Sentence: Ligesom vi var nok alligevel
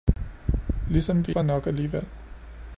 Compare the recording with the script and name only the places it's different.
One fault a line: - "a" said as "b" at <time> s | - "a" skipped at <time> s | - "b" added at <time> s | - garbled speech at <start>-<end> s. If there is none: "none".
none